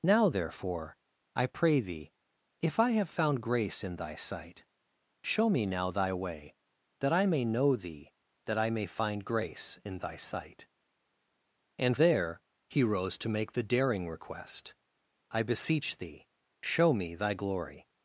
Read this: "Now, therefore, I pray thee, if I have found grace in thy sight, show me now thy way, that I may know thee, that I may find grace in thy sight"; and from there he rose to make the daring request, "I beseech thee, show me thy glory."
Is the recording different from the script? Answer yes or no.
yes